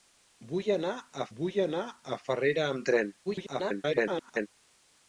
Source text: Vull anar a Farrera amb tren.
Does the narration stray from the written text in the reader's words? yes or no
yes